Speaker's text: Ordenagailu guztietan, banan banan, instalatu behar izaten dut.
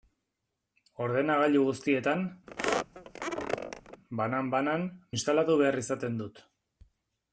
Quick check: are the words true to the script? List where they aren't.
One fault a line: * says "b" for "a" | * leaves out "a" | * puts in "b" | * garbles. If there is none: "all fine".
all fine